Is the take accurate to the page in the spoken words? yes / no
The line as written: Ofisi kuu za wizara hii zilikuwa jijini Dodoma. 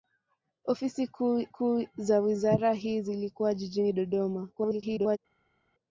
no